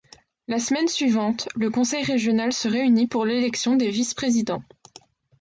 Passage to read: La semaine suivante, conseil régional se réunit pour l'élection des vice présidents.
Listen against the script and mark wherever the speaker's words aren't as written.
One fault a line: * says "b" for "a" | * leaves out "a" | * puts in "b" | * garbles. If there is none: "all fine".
* puts in "le"